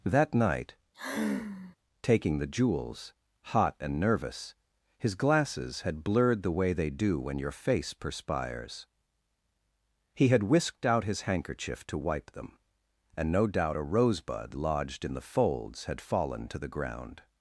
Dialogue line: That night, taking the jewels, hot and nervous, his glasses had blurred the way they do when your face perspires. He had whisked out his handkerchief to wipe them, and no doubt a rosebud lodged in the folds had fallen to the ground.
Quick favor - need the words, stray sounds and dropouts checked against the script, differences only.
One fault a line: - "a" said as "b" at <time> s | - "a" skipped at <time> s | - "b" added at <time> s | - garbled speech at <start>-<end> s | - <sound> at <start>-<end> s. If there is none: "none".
- sigh at 0.9-1.8 s